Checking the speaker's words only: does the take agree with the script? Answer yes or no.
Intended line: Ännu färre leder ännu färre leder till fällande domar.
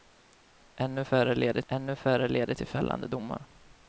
yes